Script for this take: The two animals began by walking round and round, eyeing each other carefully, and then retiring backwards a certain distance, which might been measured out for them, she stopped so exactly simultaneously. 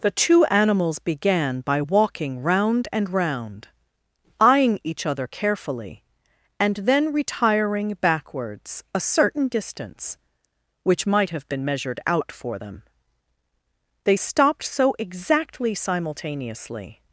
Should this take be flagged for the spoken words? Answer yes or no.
yes